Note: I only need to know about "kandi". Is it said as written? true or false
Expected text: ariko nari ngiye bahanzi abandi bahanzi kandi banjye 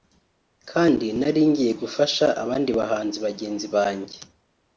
false